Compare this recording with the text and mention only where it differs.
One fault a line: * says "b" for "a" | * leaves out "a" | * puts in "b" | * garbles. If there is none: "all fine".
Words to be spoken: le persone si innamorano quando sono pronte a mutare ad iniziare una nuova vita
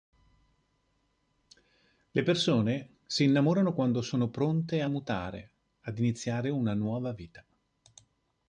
all fine